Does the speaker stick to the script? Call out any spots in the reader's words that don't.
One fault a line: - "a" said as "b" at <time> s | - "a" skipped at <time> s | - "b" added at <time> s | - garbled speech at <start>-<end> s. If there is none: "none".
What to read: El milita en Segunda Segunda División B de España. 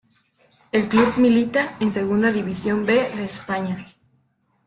- "club" added at 0.9 s
- "Segunda" skipped at 2.3 s